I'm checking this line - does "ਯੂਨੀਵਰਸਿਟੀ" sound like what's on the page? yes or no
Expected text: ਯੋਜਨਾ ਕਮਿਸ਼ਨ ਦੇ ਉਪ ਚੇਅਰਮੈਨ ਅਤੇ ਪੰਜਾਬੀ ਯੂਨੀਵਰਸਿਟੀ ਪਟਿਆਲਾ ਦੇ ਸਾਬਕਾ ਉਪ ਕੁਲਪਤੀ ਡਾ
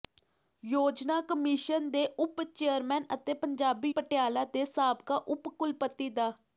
no